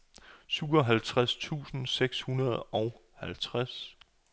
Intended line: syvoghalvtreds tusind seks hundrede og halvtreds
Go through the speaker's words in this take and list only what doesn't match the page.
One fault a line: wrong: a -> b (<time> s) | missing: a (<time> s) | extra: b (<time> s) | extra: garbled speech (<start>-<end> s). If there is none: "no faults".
no faults